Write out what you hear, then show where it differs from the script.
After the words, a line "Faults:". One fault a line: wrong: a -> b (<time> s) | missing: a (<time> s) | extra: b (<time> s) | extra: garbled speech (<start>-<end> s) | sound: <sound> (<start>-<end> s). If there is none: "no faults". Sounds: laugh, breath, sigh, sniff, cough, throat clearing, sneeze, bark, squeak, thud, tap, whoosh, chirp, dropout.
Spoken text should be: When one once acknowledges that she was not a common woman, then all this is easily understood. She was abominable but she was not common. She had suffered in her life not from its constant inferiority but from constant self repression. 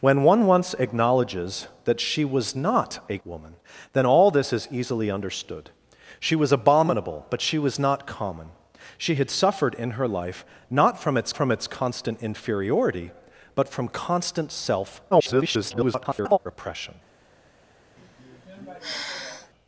When one once acknowledges that she was not a woman, then all this is easily understood. She was abominable but she was not common. She had suffered in her life not from its from its constant inferiority but from constant self [garbled] repression.
Faults:
missing: common (3.2 s)
extra: from its (11.4 s)
extra: garbled speech (15.1-16.4 s)
sound: sigh (18.0-19.5 s)